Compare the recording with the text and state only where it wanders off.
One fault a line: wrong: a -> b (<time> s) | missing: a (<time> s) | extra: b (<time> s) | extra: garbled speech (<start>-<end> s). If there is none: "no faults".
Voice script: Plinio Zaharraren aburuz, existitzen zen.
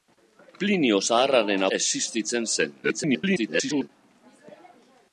missing: aburuz (1.7 s)
extra: garbled speech (2.8-3.9 s)